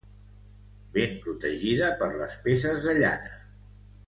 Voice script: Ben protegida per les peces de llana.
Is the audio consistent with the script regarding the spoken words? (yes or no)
yes